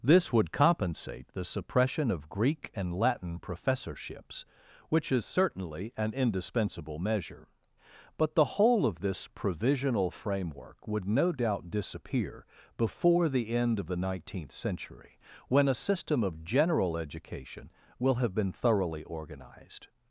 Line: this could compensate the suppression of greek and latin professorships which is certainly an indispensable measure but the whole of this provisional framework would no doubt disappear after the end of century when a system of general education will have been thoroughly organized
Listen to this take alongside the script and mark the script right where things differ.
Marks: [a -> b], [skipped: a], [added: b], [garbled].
this [could -> would] compensate the suppression of greek and latin professorships which is certainly an indispensable measure but the whole of this provisional framework would no doubt disappear [after -> before] the end of [added: the nineteenth] century when a system of general education will have been thoroughly organized